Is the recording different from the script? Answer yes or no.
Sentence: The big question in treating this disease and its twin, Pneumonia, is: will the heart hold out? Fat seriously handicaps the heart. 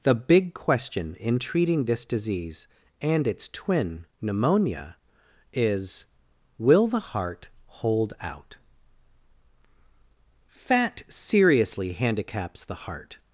no